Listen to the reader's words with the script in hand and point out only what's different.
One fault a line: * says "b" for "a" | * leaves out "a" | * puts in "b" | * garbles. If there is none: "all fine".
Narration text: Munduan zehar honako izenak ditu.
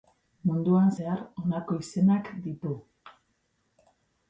all fine